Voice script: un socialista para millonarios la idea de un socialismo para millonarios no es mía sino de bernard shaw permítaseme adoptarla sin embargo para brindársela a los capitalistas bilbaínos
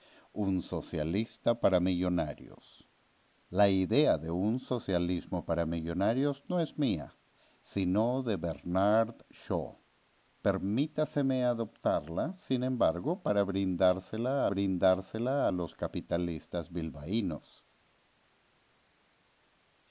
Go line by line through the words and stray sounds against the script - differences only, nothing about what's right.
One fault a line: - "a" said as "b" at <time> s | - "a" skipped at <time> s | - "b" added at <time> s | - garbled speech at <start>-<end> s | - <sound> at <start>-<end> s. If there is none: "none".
- "brindársela" added at 14.5 s